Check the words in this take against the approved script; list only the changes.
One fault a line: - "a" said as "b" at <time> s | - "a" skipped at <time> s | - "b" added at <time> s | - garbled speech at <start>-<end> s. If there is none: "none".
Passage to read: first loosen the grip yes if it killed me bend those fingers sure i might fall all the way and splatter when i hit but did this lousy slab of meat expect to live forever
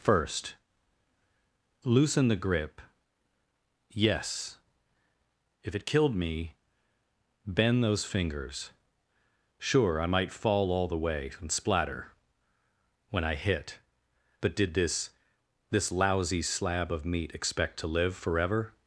- "this" added at 15.7 s